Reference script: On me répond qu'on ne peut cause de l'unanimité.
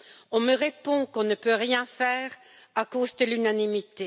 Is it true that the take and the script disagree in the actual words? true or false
true